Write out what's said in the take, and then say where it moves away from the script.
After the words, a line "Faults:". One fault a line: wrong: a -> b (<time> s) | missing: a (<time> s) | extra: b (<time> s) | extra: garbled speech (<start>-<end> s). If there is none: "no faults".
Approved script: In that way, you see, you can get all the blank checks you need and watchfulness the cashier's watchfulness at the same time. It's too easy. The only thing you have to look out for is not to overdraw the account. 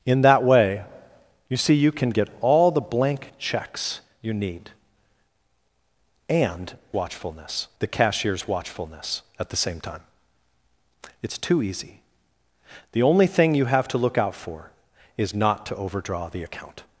In that way, you see, you can get all the blank checks you need and watchfulness the cashier's watchfulness at the same time. It's too easy. The only thing you have to look out for is not to overdraw the account.
Faults:
no faults